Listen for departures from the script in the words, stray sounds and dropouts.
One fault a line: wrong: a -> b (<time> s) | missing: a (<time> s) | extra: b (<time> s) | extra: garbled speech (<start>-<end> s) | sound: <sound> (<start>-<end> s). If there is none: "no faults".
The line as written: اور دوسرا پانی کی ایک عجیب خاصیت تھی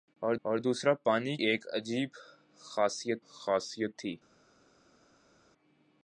extra: اور (0.5 s)
missing: کی (1.4 s)
extra: خاصیت (3.3 s)